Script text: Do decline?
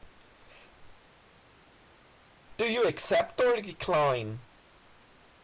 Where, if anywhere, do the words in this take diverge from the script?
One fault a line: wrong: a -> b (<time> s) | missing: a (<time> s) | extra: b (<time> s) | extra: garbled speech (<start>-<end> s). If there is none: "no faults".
extra: you accept or (2.7 s)